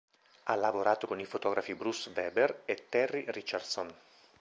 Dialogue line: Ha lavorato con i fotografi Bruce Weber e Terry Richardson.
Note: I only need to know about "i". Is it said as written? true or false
true